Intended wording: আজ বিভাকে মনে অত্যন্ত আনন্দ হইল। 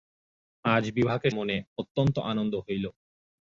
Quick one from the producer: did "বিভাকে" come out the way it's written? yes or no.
yes